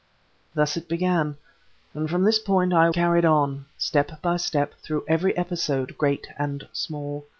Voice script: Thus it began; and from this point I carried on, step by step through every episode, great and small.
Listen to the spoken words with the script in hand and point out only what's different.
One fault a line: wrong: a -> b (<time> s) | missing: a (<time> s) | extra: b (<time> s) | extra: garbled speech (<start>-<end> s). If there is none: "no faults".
no faults